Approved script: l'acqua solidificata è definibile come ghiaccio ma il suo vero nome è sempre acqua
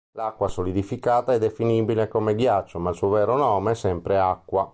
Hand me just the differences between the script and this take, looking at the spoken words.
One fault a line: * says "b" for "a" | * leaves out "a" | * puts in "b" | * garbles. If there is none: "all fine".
all fine